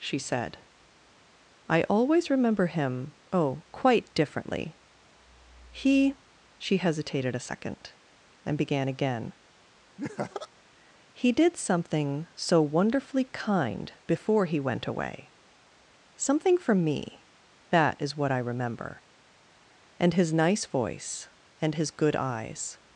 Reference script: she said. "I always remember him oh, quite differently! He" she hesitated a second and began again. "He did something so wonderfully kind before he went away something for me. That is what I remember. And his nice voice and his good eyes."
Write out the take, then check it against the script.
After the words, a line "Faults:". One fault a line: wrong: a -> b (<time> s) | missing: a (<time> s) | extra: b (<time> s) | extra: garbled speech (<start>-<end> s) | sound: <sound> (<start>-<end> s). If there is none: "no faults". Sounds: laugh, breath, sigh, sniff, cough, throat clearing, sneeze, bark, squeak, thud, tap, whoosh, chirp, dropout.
she said. "I always remember him oh, quite differently! He" she hesitated a second and began again. "He did something so wonderfully kind before he went away something for me. That is what I remember. And his nice voice and his good eyes."
Faults:
sound: laugh (10.0-10.5 s)